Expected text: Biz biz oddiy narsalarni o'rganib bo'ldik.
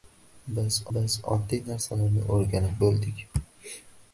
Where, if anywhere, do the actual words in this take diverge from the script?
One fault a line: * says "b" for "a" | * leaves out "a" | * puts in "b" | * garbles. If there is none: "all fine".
all fine